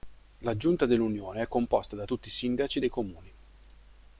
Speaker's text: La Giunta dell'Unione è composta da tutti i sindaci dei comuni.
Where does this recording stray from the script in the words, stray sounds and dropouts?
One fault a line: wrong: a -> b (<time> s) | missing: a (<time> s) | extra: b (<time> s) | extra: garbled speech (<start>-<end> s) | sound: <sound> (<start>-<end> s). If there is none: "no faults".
no faults